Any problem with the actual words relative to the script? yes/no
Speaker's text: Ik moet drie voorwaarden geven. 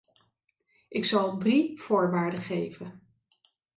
yes